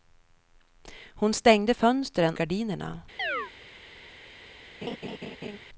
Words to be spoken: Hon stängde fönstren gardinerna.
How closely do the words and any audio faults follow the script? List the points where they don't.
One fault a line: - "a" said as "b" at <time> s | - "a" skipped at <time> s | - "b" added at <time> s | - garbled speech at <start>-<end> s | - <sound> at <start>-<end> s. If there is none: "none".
- chirp at 3.2-3.5 s
- laugh at 4.8-5.6 s